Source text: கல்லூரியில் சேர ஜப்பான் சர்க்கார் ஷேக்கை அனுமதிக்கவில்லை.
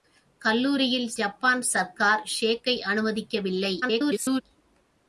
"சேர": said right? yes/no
no